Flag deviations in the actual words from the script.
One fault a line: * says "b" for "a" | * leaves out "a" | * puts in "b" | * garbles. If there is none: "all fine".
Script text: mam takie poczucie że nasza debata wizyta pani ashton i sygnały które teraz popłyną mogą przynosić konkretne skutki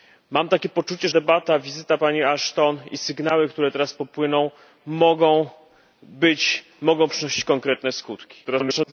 * leaves out "że nasza"
* garbles